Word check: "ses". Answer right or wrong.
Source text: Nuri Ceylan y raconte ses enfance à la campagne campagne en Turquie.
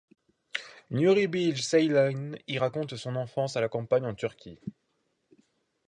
wrong